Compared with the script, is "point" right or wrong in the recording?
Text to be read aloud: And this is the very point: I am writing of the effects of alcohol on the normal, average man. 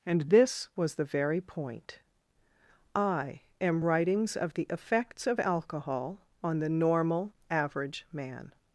right